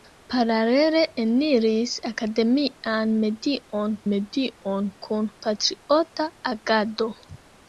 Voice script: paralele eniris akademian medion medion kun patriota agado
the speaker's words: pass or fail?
pass